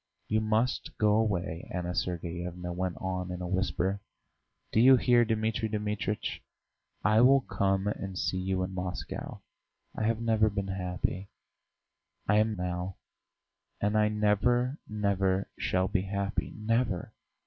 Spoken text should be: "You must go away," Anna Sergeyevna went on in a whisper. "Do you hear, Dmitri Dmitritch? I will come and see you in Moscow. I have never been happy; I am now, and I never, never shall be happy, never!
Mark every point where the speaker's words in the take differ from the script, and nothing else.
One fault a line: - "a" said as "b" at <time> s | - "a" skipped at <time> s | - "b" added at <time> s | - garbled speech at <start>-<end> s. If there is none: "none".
none